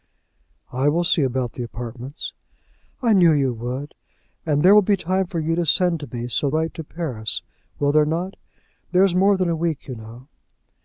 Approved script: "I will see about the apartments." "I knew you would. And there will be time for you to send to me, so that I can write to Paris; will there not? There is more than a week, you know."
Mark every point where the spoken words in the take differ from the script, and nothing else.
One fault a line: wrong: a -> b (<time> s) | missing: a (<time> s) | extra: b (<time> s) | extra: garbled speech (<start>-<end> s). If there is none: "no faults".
missing: that I can (6.5 s)